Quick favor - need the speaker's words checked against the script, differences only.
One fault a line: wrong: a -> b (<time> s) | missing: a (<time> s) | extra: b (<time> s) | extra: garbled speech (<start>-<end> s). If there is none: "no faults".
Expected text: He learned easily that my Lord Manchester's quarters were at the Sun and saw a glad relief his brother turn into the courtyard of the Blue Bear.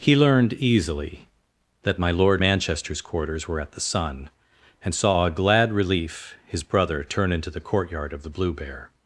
no faults